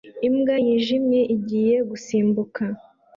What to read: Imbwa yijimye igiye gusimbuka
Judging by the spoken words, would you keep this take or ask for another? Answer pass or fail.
pass